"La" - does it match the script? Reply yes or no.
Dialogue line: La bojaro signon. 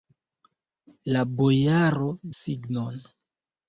yes